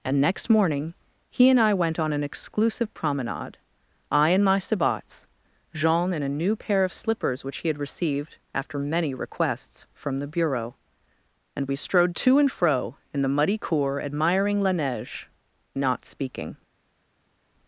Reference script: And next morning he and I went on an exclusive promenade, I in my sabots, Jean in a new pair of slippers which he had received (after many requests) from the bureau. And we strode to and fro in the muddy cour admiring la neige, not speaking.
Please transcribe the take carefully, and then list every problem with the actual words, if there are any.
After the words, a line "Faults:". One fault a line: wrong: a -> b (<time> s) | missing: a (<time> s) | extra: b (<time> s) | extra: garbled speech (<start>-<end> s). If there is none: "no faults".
And next morning he and I went on an exclusive promenade, I in my sabots, Jean in a new pair of slippers which he had received (after many requests) from the bureau. And we strode to and fro in the muddy cour admiring la neige, not speaking.
Faults:
no faults